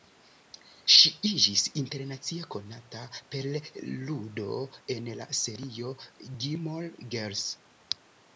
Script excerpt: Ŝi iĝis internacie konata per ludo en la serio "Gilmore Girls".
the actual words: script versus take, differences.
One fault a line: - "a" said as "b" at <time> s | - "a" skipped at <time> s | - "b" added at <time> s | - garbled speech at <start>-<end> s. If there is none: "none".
none